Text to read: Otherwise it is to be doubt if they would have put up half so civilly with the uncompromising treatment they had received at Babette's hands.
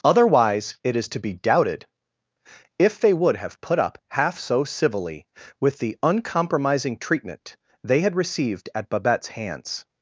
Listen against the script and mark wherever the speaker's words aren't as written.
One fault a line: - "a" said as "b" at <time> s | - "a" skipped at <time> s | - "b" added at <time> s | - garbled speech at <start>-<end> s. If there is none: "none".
- "doubt" said as "doubted" at 1.3 s